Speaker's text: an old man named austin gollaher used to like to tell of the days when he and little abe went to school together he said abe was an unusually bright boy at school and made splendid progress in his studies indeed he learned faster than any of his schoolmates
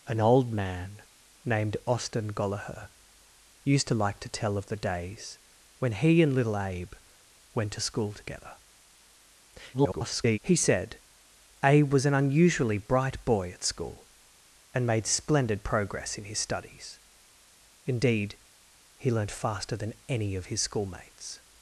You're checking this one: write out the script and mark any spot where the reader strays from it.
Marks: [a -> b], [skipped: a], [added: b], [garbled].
an old man named austin gollaher used to like to tell of the days when he and little abe went to school together [garbled] he said abe was an unusually bright boy at school and made splendid progress in his studies indeed he learned faster than any of his schoolmates